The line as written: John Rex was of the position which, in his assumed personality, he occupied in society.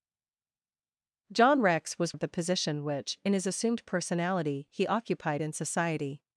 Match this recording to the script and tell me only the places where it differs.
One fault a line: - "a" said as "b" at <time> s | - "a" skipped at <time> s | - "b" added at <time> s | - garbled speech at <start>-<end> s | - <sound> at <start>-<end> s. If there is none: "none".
none